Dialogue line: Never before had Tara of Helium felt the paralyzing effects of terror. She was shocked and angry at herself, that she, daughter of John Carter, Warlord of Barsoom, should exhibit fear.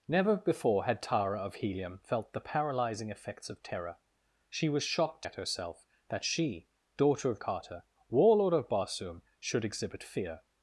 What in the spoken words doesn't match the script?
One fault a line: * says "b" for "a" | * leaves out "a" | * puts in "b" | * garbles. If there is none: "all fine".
* leaves out "and angry"
* leaves out "John"